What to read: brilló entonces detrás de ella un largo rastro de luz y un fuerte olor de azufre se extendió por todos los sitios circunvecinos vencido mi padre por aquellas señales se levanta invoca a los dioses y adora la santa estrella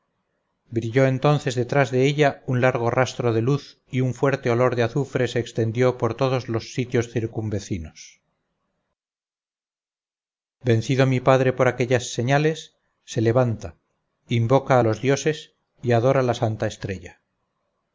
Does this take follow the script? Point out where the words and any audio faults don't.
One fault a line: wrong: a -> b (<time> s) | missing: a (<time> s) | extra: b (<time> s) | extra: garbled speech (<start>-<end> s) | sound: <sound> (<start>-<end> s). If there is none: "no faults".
no faults